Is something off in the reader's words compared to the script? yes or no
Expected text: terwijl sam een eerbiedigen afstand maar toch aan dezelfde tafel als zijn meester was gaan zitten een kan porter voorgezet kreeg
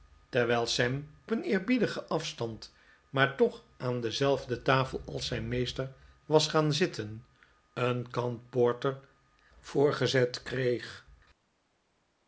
no